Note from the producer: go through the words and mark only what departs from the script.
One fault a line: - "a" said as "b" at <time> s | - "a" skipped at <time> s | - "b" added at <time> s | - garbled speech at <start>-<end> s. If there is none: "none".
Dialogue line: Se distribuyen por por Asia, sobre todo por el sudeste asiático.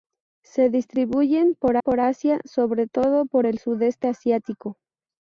none